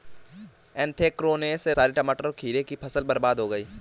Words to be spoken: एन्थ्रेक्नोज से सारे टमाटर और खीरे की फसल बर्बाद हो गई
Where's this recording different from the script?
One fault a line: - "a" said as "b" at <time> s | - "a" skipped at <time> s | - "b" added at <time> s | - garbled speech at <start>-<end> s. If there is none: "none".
none